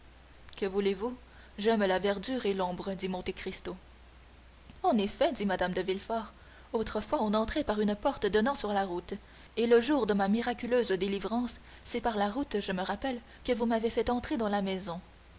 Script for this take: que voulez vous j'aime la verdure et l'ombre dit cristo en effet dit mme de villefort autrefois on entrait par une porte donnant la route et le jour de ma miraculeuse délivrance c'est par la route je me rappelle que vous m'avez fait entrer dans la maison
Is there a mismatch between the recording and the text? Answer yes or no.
yes